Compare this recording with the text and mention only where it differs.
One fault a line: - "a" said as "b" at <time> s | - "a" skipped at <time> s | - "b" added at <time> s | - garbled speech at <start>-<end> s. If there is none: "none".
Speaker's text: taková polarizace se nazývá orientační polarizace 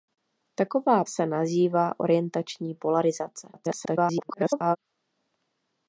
- "polarizace" skipped at 1.0 s
- garbled speech at 3.5-4.8 s